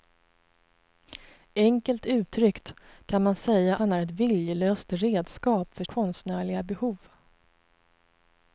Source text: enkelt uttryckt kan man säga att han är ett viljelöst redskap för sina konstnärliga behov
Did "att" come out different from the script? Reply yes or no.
yes